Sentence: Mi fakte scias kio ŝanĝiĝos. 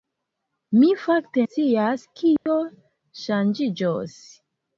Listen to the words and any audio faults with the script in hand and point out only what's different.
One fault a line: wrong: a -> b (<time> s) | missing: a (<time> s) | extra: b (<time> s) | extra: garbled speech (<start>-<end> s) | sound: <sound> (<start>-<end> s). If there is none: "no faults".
sound: dropout (2.4-2.5 s)